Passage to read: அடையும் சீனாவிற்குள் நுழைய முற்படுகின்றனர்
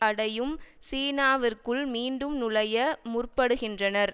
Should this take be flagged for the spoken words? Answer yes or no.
yes